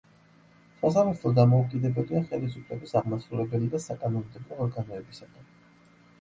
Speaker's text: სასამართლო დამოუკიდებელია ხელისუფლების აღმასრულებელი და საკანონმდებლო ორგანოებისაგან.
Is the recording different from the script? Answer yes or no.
no